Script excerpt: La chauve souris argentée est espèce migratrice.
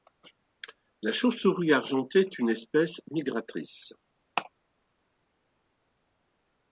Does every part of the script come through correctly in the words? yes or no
no